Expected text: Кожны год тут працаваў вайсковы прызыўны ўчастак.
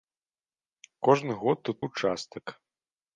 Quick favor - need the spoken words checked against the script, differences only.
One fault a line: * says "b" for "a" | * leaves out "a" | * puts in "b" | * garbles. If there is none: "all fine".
* leaves out "працаваў вайсковы прызыўны"